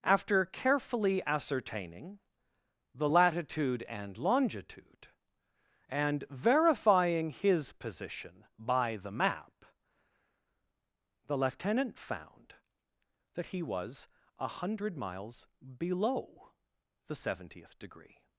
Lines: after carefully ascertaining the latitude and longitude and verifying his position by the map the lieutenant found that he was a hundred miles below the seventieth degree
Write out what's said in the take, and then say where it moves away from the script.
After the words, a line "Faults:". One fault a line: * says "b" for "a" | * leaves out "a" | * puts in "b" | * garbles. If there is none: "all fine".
after carefully ascertaining the latitude and longitude and verifying his position by the map the lieutenant found that he was a hundred miles below the seventieth degree
Faults:
all fine